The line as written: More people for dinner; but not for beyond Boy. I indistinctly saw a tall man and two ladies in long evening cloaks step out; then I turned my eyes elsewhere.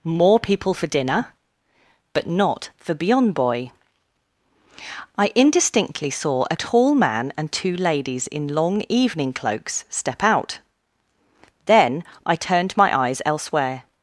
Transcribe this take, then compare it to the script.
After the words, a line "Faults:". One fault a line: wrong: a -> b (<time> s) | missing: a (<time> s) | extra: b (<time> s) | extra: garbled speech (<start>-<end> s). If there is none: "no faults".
More people for dinner; but not for beyond Boy. I indistinctly saw a tall man and two ladies in long evening cloaks step out; then I turned my eyes elsewhere.
Faults:
no faults